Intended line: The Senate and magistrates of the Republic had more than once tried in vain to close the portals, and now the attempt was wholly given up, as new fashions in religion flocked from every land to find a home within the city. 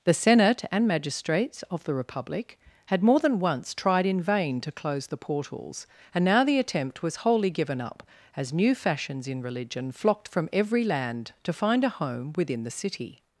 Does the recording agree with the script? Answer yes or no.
yes